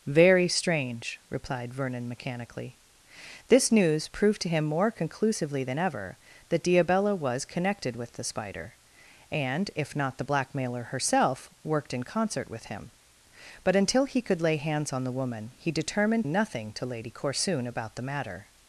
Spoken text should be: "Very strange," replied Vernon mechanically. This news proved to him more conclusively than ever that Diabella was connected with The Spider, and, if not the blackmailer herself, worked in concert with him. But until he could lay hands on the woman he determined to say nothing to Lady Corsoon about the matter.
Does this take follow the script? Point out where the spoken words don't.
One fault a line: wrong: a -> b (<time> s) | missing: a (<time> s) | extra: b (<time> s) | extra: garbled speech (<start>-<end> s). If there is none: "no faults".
missing: to say (16.2 s)